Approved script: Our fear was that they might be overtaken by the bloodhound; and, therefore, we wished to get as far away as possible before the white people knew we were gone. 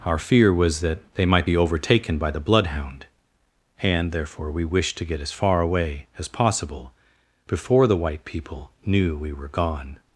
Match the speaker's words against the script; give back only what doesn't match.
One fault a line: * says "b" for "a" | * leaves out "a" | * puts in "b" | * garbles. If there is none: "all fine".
all fine